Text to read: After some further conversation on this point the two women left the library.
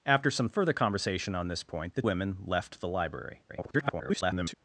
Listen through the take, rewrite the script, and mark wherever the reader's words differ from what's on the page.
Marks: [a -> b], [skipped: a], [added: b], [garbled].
After some further conversation on this point the [skipped: two] women left the library. [garbled]